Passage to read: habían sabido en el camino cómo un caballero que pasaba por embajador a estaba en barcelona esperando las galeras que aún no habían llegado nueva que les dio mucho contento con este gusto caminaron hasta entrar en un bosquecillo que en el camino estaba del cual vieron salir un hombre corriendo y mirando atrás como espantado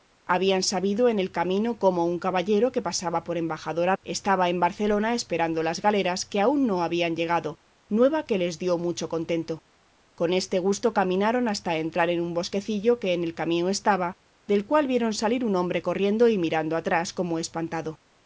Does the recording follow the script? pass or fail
pass